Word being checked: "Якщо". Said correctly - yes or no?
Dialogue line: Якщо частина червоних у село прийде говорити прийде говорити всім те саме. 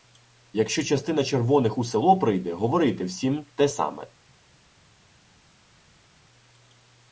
yes